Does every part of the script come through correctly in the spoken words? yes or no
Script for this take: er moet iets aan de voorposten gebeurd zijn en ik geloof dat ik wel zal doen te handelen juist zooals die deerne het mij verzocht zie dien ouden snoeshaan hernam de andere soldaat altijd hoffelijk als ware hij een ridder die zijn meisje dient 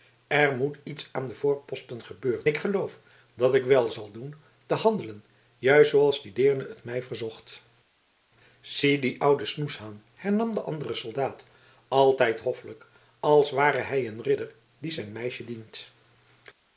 no